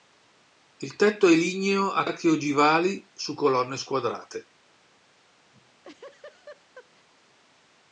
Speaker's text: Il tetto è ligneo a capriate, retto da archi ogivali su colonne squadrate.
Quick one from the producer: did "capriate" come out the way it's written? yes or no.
no